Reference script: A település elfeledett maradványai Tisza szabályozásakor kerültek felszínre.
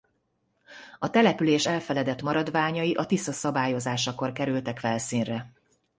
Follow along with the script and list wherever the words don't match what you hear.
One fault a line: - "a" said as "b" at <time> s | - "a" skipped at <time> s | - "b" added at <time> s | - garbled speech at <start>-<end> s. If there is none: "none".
- "a" added at 2.9 s